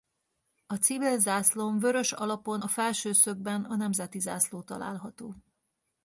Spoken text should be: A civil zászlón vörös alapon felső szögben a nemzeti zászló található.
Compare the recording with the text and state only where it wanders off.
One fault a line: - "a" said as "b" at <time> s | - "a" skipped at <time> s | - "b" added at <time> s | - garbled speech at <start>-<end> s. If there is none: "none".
- "a" added at 2.6 s